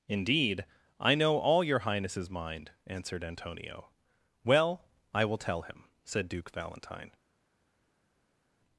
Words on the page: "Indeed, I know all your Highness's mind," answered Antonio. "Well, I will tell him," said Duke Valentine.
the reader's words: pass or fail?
pass